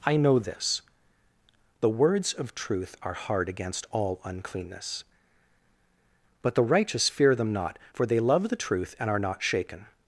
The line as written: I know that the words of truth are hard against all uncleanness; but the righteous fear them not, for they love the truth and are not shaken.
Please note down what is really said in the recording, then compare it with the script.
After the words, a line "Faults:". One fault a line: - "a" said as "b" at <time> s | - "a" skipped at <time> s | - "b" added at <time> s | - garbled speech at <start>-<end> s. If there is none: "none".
I know this the words of truth are hard against all uncleanness; but the righteous fear them not, for they love the truth and are not shaken.
Faults:
- "that" said as "this" at 0.4 s